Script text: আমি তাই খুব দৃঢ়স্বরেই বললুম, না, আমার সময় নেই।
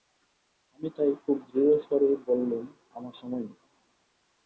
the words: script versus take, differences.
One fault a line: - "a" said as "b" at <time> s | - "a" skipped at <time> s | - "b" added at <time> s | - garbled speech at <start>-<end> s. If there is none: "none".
- "না" skipped at 2.6 s